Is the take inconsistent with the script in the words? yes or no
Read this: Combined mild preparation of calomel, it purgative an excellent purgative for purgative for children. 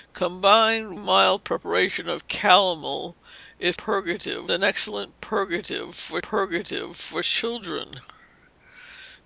no